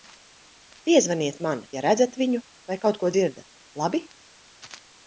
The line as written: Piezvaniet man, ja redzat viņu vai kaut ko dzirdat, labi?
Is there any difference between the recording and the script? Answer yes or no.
no